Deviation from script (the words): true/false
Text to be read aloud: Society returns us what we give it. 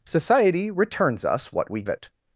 true